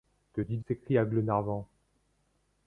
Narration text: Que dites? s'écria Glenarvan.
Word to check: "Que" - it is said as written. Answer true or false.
true